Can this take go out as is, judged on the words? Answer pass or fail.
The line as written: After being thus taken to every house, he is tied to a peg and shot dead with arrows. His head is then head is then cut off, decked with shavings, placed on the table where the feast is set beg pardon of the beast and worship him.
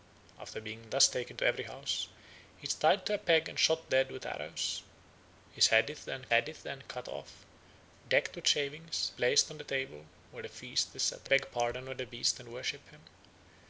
pass